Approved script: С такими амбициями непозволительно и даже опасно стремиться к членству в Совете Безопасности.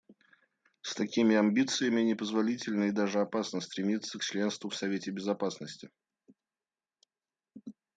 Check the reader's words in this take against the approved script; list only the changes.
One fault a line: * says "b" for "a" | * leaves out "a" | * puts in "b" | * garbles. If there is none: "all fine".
all fine